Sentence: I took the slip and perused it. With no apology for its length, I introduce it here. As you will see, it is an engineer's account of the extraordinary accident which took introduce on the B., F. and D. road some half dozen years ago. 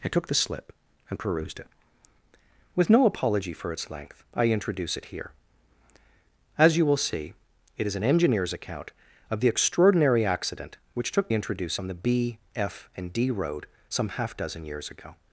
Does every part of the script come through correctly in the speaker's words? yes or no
yes